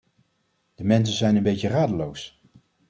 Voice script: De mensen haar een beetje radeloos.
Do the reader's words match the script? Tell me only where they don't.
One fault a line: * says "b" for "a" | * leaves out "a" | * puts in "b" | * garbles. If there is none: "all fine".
* says "zijn" for "haar"